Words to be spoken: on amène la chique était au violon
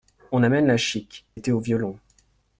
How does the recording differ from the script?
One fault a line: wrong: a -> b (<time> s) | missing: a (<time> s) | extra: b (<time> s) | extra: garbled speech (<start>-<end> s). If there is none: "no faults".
no faults